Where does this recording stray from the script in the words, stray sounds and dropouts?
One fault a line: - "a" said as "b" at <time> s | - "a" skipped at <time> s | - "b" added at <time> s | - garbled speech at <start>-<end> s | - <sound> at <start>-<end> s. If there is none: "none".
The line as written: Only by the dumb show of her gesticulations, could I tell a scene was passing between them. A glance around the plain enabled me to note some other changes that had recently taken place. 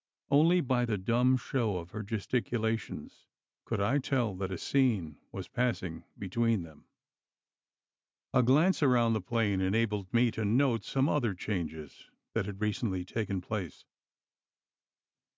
- "that" added at 4.4 s